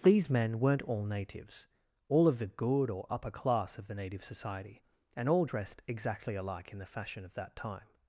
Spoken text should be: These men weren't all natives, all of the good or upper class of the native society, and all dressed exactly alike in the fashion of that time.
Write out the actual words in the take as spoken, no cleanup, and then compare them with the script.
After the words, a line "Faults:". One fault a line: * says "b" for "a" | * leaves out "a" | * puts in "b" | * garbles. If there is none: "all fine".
These men weren't all natives, all of the good or upper class of the native society, and all dressed exactly alike in the fashion of that time.
Faults:
all fine